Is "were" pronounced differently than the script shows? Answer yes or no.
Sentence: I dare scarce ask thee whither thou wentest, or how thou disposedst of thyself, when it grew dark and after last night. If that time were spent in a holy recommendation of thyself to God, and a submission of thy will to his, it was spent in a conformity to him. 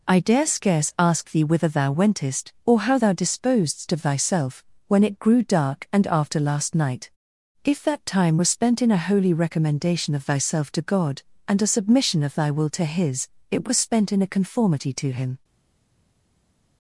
yes